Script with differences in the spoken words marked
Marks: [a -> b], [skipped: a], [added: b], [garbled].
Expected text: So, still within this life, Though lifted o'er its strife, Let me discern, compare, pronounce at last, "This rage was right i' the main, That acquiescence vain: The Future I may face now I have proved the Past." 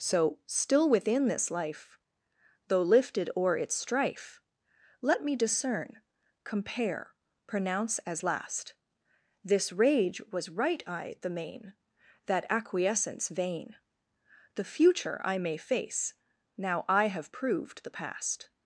So, still within this life, Though lifted o'er its strife, Let me discern, compare, pronounce [at -> as] last, "This rage was right i' the main, That acquiescence vain: The Future I may face now I have proved the Past."